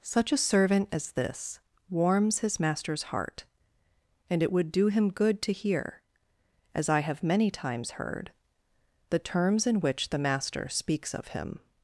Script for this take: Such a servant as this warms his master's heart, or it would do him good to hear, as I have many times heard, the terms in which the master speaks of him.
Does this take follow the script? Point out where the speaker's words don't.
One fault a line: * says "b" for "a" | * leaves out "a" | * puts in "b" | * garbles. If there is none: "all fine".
* says "and" for "or"